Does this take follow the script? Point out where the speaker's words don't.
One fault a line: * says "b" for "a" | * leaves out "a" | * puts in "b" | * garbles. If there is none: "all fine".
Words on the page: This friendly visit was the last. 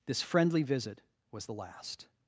all fine